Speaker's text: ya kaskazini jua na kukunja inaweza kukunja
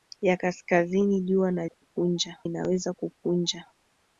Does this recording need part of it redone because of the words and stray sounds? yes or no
yes